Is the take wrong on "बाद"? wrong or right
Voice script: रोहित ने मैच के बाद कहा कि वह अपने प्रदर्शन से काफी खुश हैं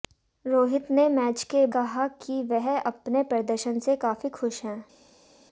wrong